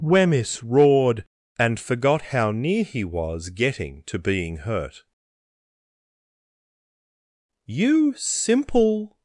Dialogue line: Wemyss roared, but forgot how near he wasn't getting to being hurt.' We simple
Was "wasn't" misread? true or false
true